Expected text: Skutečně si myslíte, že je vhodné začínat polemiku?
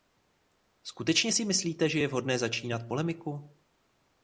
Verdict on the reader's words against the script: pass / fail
pass